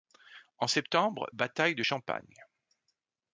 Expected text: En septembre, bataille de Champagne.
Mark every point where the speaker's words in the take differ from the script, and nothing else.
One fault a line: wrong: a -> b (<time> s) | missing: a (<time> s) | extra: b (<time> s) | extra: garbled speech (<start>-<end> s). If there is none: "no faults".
no faults